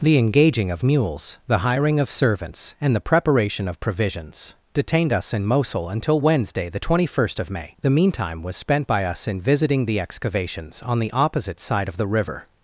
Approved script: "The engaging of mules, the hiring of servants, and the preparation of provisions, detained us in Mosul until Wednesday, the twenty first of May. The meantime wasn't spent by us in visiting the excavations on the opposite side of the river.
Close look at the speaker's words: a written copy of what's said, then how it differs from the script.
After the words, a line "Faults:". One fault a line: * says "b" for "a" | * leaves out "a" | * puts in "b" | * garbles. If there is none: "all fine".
"The engaging of mules, the hiring of servants, and the preparation of provisions, detained us in Mosul until Wednesday, the twenty first of May. The meantime was spent by us in visiting the excavations on the opposite side of the river.
Faults:
* says "was" for "wasn't"